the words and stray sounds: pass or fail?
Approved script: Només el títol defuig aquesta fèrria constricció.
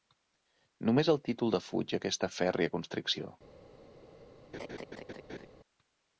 fail